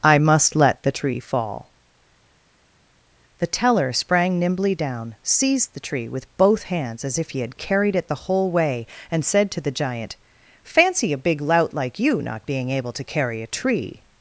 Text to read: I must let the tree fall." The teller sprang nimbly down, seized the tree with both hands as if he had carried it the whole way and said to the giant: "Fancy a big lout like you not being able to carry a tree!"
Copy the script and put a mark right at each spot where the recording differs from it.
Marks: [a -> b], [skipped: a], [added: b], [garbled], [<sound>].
I must let the tree fall." The teller sprang nimbly down, seized the tree with both hands as if he had carried it the whole way and said to the giant: "Fancy a big lout like you not being able to carry a tree!"